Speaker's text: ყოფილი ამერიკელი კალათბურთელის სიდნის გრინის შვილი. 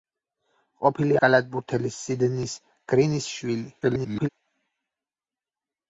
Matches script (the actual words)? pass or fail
fail